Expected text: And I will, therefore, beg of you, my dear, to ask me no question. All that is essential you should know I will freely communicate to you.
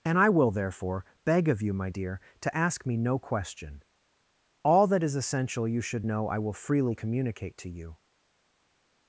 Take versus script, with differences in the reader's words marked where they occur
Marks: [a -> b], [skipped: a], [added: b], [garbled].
And I will, therefore, beg of you, my dear, to ask me no question. All that is essential you should know I will freely communicate to you.